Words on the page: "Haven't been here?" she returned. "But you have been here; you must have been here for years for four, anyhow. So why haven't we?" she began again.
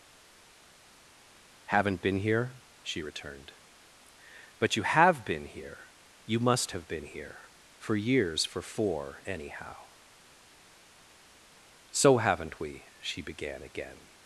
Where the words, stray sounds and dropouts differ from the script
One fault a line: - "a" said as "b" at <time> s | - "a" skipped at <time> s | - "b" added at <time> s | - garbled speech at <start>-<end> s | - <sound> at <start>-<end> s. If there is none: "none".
- "why" skipped at 12.2 s